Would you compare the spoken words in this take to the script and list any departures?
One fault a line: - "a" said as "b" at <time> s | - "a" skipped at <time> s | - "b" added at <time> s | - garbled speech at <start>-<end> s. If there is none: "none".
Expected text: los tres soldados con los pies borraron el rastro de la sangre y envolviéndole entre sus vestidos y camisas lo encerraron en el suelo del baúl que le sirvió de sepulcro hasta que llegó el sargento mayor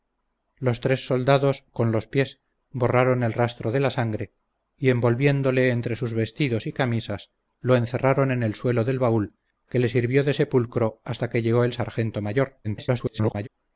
- garbled speech at 12.6-13.5 s